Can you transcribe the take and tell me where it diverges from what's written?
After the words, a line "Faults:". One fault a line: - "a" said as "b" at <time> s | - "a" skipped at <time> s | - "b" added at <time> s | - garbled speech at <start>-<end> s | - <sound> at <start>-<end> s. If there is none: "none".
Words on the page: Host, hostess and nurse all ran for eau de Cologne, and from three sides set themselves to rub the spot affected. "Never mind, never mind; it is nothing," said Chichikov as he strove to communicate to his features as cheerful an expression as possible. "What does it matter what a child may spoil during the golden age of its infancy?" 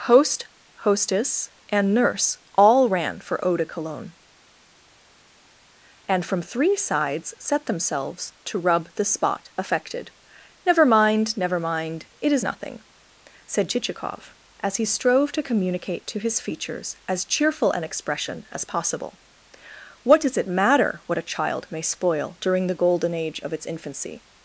Host, hostess and nurse all ran for eau de Cologne, and from three sides set themselves to rub the spot affected. "Never mind, never mind; it is nothing," said Chichikov as he strove to communicate to his features as cheerful an expression as possible. "What does it matter what a child may spoil during the golden age of its infancy?"
Faults:
none